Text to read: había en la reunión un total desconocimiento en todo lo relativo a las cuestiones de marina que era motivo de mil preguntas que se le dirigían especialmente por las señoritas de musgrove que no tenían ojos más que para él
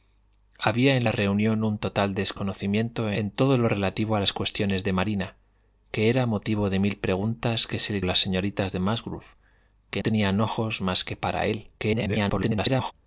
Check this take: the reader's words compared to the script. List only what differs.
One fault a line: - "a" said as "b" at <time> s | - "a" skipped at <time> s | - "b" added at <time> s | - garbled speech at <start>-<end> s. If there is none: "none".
- "dirigían especialmente por" skipped at 8.0 s
- "no" skipped at 10.0 s
- garbled speech at 11.8-12.9 s